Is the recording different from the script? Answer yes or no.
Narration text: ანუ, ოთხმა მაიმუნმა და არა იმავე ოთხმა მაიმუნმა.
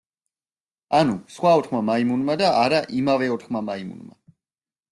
yes